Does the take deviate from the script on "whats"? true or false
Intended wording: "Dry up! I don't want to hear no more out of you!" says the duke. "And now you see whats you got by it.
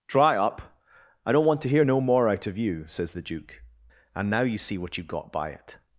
true